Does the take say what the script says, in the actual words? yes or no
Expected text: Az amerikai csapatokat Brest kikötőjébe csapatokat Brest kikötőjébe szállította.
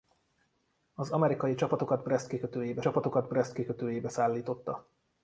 yes